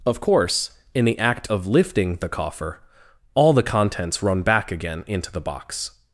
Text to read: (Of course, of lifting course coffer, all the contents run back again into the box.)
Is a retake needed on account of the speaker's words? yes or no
yes